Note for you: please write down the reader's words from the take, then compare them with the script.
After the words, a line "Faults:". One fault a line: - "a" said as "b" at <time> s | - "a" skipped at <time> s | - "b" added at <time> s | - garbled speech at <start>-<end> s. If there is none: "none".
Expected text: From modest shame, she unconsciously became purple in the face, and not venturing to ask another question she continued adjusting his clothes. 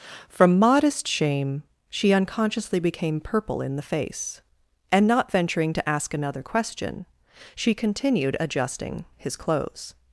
From modest shame, she unconsciously became purple in the face, and not venturing to ask another question she continued adjusting his clothes.
Faults:
none